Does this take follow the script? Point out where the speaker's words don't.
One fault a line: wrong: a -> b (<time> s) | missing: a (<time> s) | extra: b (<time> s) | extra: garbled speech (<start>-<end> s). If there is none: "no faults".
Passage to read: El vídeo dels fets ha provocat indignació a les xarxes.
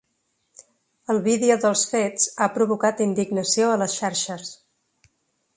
no faults